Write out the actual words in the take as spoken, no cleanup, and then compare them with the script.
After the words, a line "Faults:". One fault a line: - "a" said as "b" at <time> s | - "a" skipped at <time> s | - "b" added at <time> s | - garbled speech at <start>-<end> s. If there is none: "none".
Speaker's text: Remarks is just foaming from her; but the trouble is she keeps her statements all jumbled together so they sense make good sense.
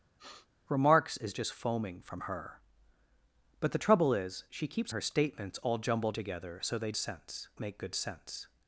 Remarks is just foaming from her; but the trouble is she keeps her statements all jumbled together so they sense make good sense.
Faults:
none